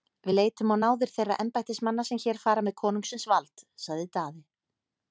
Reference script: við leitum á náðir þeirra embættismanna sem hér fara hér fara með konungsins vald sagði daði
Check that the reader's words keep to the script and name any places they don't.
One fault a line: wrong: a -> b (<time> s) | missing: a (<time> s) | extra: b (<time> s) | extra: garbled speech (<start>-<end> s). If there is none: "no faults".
missing: hér fara (2.7 s)